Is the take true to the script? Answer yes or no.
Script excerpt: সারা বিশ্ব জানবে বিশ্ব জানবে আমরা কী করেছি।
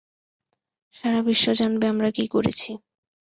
no